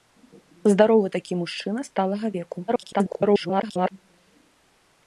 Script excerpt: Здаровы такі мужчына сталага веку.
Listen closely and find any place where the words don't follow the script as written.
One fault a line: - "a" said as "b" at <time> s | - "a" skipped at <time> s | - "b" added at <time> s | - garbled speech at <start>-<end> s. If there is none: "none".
- garbled speech at 2.7-3.9 s